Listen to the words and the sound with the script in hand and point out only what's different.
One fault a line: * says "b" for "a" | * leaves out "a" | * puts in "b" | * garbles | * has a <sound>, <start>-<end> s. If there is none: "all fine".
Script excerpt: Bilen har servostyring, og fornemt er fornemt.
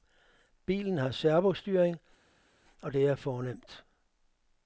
* says "det" for "fornemt"